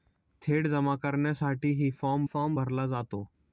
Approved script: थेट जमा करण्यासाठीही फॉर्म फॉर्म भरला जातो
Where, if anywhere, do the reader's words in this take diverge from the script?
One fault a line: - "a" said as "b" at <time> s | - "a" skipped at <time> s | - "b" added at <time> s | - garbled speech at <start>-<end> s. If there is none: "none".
none